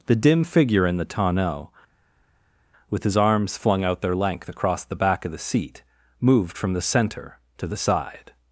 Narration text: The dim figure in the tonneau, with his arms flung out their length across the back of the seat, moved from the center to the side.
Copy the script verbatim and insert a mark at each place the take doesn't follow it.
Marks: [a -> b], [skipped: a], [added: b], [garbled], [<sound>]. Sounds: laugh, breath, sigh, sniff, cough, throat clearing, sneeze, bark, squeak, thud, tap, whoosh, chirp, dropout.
The dim figure in the tonneau, with his arms flung out their length across the back of the seat, moved from the center to the side.